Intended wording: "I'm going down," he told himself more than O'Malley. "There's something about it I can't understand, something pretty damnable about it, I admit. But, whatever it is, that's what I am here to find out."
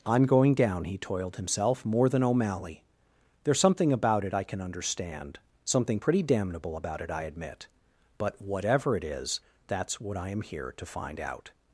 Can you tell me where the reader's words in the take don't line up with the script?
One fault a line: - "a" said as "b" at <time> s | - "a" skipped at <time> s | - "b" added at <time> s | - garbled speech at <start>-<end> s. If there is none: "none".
- "told" said as "toiled" at 1.0 s
- "can't" said as "can" at 4.4 s